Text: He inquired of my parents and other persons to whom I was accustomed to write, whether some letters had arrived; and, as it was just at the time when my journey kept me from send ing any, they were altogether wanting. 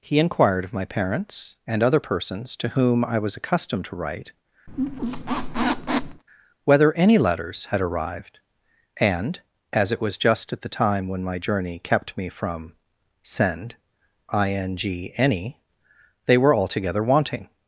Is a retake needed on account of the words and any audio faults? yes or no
yes